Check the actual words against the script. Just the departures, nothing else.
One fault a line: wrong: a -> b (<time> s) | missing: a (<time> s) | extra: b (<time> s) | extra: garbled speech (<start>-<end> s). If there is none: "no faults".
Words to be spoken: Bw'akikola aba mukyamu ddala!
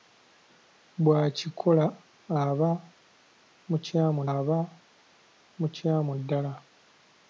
extra: aba mukyamu (4.3 s)